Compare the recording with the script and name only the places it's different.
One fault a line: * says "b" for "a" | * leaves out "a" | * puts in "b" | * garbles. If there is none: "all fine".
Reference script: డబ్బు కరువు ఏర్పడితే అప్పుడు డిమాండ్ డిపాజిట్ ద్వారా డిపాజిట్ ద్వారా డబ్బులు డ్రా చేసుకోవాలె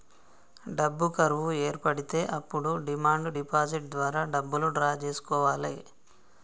* leaves out "డిపాజిట్ ద్వారా"